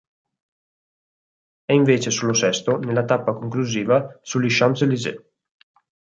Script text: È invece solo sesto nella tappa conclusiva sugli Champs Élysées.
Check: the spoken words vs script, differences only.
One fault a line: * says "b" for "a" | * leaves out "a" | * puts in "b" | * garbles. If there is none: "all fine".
all fine